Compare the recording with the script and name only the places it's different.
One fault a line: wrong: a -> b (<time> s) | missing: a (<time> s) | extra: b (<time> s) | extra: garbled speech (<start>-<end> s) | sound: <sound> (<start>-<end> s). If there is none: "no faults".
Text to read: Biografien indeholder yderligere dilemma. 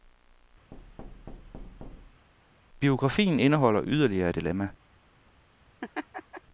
sound: thud (0.7-2.3 s)
sound: laugh (5.8-6.4 s)